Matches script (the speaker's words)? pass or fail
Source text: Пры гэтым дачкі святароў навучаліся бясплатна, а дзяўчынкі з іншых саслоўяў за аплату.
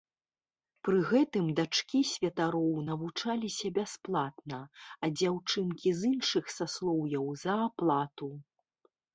pass